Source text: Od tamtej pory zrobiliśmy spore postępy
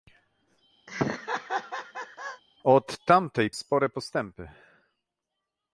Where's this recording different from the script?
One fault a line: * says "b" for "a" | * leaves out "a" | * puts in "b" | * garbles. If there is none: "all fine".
* leaves out "pory zrobiliśmy"